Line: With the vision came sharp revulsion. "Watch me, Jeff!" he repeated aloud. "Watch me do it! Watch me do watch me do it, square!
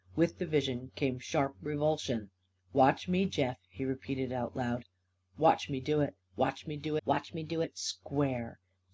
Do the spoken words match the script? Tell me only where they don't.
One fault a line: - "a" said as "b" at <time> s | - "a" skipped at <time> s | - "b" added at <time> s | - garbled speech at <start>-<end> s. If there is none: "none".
none